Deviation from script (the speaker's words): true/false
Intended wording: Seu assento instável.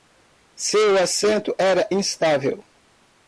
true